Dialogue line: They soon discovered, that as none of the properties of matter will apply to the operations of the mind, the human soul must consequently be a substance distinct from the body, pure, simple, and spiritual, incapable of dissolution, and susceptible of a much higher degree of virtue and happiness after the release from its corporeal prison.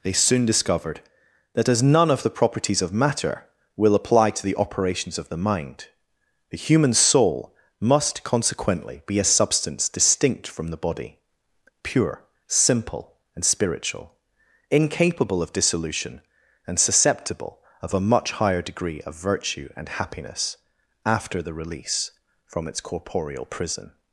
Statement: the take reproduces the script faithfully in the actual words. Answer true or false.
true